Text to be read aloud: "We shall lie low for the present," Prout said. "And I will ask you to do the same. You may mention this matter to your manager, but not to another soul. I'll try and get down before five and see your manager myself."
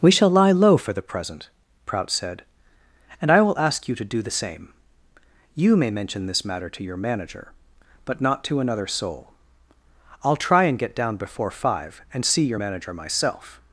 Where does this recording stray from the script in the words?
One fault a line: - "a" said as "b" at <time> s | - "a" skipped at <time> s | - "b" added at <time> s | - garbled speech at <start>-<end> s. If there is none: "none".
none